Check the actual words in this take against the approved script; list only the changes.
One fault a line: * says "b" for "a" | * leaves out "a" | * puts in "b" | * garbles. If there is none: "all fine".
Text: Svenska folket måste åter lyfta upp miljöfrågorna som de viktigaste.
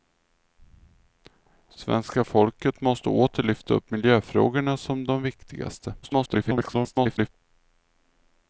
* garbles